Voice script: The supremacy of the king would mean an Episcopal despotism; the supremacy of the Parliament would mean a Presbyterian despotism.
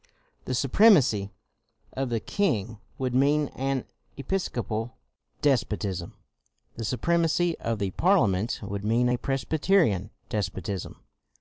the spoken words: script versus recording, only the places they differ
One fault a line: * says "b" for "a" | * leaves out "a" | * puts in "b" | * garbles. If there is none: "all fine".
all fine